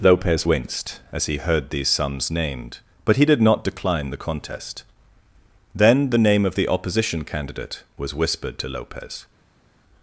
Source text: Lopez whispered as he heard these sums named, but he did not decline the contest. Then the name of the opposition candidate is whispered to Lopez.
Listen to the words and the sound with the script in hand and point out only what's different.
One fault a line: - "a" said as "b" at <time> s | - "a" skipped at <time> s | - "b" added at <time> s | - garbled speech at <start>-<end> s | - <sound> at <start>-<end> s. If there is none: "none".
- "whispered" said as "winced" at 0.4 s
- "is" said as "was" at 8.0 s